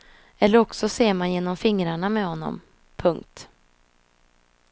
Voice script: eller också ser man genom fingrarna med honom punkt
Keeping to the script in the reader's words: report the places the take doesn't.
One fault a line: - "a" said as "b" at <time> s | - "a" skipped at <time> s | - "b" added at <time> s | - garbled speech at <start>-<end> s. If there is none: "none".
none